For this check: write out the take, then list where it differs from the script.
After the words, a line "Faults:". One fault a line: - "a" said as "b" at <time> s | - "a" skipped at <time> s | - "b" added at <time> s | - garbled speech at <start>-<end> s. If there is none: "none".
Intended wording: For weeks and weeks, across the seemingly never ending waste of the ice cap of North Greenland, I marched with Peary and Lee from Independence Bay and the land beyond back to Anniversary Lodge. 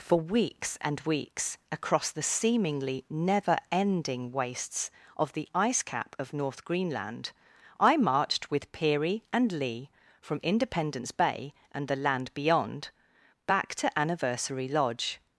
For weeks and weeks, across the seemingly never ending wastes of the ice cap of North Greenland, I marched with Peary and Lee from Independence Bay and the land beyond back to Anniversary Lodge.
Faults:
- "waste" said as "wastes" at 4.3 s